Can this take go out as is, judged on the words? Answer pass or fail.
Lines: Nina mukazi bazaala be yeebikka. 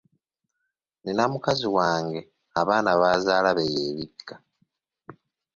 fail